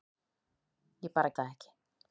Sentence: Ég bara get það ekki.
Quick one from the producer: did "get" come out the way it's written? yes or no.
no